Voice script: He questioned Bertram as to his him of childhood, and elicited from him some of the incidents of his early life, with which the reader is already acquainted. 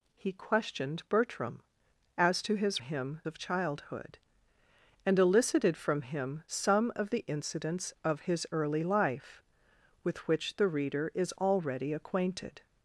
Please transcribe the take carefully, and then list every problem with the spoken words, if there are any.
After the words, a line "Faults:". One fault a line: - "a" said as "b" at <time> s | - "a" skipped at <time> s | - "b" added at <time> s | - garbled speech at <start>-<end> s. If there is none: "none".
He questioned Bertram as to his him of childhood, and elicited from him some of the incidents of his early life, with which the reader is already acquainted.
Faults:
none